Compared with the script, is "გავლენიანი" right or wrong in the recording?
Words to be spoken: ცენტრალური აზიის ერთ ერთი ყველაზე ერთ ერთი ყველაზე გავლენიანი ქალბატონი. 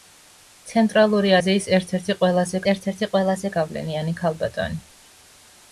right